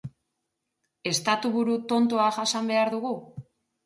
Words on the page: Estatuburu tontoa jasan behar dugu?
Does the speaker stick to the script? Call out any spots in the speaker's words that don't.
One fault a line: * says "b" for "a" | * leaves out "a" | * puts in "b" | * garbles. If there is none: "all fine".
all fine